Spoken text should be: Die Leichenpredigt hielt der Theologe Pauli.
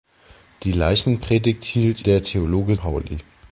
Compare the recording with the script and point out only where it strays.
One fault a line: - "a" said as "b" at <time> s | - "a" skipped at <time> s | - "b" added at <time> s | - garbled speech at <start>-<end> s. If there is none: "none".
none